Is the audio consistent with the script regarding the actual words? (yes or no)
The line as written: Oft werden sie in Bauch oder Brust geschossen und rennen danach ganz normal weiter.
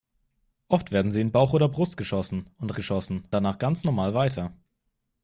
no